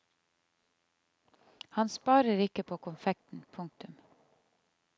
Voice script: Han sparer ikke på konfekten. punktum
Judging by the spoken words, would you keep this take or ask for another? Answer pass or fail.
pass